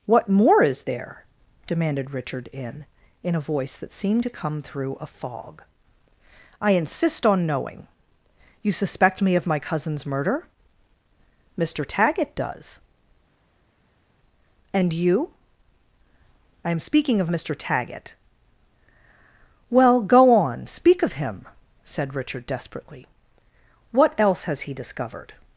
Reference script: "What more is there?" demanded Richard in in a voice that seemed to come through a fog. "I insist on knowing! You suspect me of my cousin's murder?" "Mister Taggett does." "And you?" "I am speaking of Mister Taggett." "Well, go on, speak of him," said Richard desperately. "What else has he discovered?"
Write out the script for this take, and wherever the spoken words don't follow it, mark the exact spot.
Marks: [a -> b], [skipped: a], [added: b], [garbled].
"What more is there?" demanded Richard in in a voice that seemed to come through a fog. "I insist on knowing! You suspect me of my cousin's murder?" "Mister Taggett does." "And you?" "I am speaking of Mister Taggett." "Well, go on, speak of him," said Richard desperately. "What else has he discovered?"